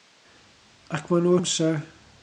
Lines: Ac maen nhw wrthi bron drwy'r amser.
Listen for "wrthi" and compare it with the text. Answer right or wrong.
wrong